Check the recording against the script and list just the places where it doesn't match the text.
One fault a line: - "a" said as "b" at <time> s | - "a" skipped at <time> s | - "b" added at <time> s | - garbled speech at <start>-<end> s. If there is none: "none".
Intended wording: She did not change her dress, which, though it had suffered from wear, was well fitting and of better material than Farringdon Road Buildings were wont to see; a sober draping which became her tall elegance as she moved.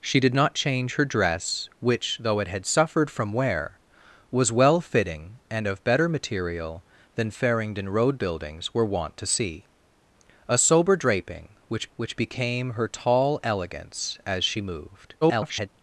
- "which" added at 12.0 s
- garbled speech at 15.2-15.7 s